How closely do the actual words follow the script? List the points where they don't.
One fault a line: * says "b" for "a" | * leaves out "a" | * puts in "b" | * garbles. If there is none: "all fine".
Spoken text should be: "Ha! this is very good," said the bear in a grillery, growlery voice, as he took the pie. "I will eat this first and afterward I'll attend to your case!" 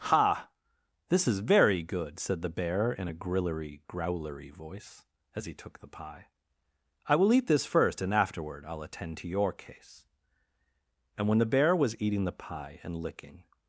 * puts in "And when the bear was eating the pie and licking"